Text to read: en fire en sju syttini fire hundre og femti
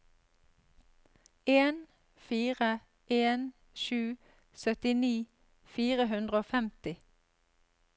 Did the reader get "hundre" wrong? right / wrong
right